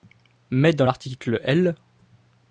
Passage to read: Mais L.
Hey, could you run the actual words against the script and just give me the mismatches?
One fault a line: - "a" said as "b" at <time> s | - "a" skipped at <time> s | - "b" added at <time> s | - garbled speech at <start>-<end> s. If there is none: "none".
- "dans l'article" added at 0.7 s